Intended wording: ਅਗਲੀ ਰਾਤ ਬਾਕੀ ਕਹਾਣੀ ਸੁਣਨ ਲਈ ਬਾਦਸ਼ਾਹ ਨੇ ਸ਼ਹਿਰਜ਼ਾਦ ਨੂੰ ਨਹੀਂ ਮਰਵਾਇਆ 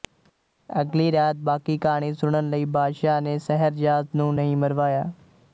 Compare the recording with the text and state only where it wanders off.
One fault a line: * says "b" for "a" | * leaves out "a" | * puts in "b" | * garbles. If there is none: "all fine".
all fine